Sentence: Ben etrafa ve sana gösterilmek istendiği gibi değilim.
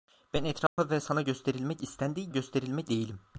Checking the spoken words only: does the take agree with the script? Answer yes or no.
no